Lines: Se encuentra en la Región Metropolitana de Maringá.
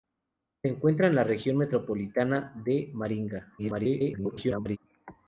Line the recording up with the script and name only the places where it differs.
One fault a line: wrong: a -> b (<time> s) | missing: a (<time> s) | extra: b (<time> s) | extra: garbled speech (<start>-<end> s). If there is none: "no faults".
extra: garbled speech (3.6-4.8 s)